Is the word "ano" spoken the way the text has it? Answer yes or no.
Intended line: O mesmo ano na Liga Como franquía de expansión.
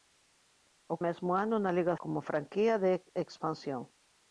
yes